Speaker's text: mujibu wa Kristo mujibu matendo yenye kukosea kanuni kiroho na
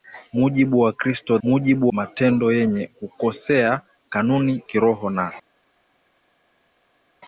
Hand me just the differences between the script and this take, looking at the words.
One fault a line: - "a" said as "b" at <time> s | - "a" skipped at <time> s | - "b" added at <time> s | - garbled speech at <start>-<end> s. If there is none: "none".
none